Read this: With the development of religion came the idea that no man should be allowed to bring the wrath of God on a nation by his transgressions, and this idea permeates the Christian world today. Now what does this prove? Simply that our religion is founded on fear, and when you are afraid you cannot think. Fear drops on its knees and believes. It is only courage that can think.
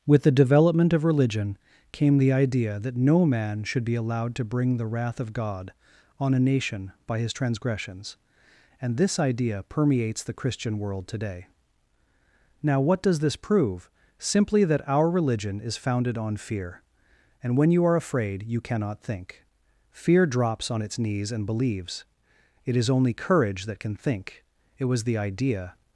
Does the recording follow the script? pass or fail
fail